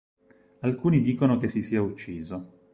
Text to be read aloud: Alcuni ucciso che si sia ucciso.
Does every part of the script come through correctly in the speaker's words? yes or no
no